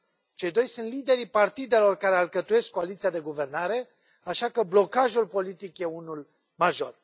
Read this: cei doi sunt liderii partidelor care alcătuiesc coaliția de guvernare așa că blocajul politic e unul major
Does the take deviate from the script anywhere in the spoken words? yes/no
no